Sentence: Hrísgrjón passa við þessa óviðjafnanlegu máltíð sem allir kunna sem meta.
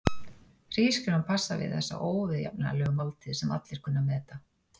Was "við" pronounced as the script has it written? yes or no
yes